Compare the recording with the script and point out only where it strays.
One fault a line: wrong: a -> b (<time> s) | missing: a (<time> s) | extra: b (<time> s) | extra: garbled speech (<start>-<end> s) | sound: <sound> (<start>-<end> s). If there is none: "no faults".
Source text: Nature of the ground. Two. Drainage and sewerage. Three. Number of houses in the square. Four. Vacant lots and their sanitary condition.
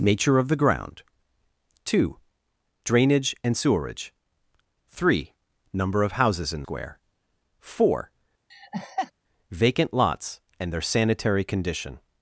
missing: the (6.6 s)
sound: laugh (8.5-9.1 s)